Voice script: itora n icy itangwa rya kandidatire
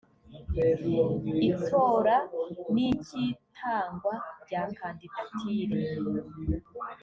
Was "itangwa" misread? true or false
false